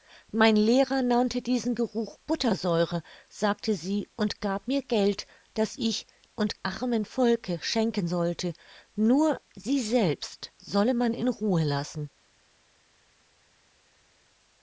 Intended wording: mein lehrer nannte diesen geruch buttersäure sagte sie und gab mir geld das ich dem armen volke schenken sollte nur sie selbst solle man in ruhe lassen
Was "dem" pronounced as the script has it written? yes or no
no